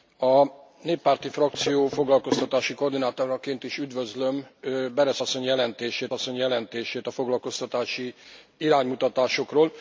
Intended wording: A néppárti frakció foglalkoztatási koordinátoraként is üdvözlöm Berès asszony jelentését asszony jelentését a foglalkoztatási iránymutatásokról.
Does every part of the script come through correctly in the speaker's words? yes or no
yes